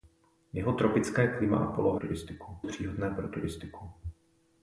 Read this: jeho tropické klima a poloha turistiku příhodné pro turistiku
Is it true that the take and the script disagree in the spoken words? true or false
false